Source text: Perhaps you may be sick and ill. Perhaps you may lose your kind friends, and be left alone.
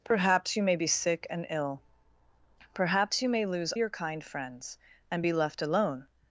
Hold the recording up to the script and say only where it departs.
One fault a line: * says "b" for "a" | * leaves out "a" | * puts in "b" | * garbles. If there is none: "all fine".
all fine